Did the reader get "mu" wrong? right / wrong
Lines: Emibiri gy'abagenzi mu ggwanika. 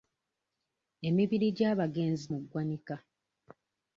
right